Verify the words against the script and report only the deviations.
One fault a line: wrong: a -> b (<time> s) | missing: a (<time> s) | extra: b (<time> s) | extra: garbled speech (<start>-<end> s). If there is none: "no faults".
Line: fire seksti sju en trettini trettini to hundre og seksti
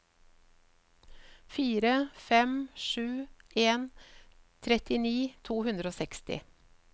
wrong: seksti -> fem (2.3 s)
missing: trettini (5.2 s)